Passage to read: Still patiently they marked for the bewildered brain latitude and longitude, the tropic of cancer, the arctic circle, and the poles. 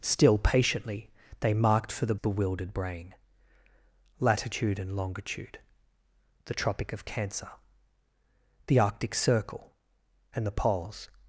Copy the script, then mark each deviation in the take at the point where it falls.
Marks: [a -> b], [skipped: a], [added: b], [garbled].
Still patiently they marked for the bewildered brain latitude and longitude, the tropic of cancer, the arctic circle, and the poles.